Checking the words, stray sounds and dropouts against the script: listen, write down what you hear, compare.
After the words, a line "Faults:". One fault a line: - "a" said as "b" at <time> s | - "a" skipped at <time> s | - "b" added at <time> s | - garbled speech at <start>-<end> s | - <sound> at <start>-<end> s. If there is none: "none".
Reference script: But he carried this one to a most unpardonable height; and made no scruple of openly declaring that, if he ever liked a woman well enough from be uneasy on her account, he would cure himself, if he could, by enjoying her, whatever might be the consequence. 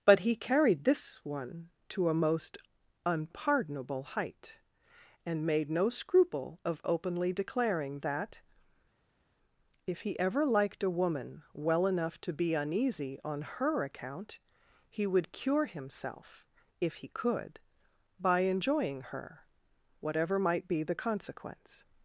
But he carried this one to a most unpardonable height; and made no scruple of openly declaring that, if he ever liked a woman well enough to be uneasy on her account, he would cure himself, if he could, by enjoying her, whatever might be the consequence.
Faults:
- "from" said as "to" at 12.2 s